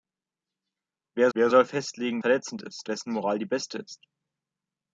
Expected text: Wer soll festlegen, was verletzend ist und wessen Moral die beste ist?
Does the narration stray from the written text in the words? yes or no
yes